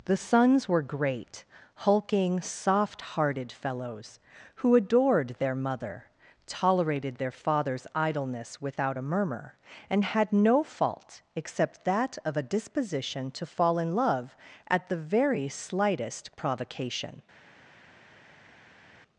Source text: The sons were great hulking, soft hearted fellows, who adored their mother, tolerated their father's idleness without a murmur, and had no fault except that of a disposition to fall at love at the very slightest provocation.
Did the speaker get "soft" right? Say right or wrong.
right